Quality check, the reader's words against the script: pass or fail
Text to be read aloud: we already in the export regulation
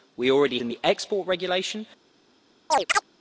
pass